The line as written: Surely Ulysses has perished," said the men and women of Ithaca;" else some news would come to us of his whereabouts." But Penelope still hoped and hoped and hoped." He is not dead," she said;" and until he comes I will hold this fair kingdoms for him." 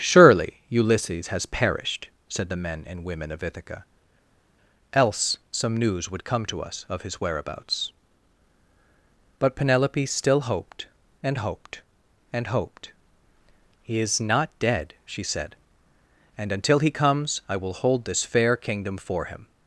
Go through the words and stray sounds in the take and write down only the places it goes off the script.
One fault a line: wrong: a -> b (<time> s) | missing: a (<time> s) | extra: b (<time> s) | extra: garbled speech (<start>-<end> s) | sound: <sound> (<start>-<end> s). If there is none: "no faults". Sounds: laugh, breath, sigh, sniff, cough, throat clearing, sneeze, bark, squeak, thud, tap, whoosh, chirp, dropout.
wrong: kingdoms -> kingdom (18.6 s)